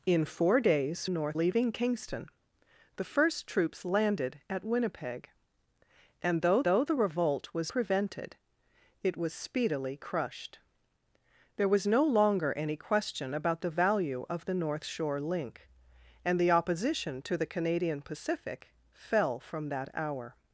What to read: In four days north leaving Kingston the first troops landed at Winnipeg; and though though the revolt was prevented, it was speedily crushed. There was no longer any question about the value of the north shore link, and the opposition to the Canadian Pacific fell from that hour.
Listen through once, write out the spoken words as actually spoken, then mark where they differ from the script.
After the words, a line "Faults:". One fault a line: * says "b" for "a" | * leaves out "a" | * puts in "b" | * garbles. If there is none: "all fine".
In four days north leaving Kingston the first troops landed at Winnipeg; and though though the revolt was prevented, it was speedily crushed. There was no longer any question about the value of the north shore link, and the opposition to the Canadian Pacific fell from that hour.
Faults:
all fine